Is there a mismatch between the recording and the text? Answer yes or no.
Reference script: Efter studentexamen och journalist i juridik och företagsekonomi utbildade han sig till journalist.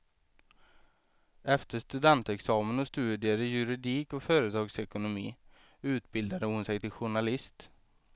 yes